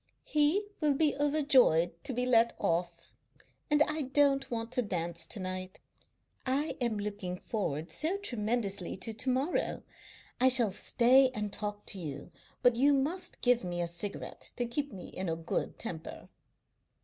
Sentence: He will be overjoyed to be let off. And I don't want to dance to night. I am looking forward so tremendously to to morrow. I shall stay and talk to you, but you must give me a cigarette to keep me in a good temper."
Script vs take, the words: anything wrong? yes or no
no